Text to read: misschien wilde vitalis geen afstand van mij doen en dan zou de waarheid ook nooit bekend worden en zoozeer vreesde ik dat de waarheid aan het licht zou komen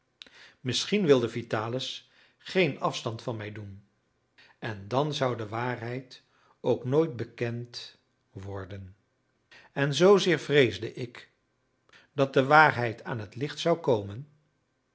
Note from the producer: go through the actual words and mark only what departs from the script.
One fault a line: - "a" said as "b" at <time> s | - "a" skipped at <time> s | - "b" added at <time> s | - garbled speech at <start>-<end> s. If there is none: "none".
none